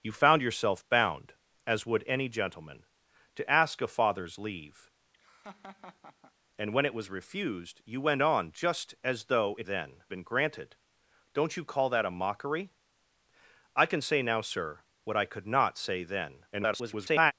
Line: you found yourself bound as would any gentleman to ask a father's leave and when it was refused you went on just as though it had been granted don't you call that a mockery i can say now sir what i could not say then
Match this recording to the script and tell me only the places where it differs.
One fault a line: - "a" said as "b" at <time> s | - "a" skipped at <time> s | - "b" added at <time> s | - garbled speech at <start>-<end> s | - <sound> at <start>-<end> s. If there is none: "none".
- laugh at 5.1-6.3 s
- "had" said as "then" at 9.6 s
- garbled speech at 16.5-17.3 s